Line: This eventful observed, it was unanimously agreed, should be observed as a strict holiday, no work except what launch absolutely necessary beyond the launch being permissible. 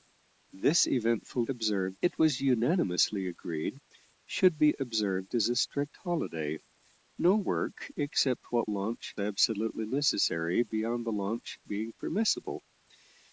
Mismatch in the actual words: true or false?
false